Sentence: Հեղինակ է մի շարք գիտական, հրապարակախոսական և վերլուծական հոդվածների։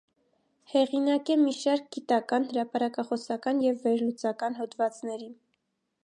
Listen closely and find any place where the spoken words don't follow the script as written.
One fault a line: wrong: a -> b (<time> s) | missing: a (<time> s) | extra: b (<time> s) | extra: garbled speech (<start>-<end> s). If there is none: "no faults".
no faults